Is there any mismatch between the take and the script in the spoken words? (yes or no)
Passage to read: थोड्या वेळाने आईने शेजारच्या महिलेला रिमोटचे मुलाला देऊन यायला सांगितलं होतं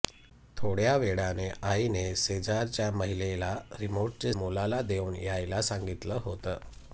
no